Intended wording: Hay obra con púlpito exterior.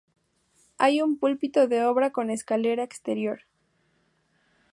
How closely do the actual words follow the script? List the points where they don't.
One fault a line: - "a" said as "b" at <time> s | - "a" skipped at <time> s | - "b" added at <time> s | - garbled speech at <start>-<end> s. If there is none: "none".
- "un púlpito de" added at 1.0 s
- "púlpito" said as "escalera" at 2.3 s